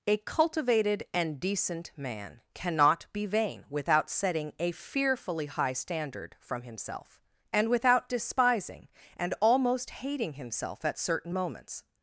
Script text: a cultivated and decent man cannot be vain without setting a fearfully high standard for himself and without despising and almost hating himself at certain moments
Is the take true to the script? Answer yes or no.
no